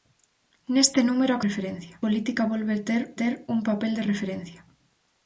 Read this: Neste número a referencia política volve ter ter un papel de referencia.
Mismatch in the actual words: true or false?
false